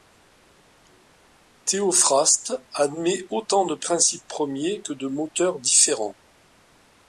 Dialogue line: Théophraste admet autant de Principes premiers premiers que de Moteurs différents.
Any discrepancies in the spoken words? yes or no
yes